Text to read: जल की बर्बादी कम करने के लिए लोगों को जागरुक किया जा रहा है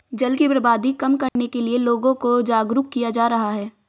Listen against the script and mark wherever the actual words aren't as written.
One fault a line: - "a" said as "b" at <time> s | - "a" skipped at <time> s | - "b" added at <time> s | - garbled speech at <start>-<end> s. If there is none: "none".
none